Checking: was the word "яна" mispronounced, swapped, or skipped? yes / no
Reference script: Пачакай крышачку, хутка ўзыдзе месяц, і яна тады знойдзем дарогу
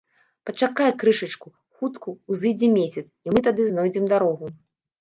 yes